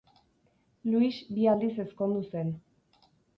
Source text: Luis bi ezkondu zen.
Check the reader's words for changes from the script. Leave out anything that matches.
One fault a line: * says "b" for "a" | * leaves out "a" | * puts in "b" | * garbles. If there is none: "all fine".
* puts in "aldiz"